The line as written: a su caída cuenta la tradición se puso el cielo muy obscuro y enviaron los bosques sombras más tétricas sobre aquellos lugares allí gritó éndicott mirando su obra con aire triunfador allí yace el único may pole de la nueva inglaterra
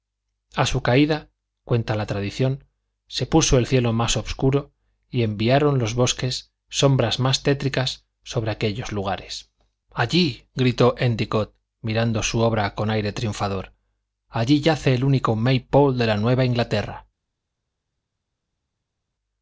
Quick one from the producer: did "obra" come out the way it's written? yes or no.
yes